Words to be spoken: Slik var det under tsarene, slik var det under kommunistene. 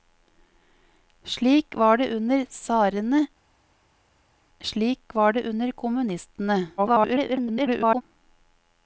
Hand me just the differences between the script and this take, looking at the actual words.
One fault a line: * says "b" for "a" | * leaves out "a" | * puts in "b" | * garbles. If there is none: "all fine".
* garbles